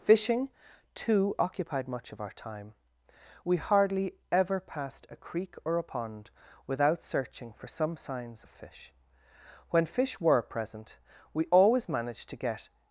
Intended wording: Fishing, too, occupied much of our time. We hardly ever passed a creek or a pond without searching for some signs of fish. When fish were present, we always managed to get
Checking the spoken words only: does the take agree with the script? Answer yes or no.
yes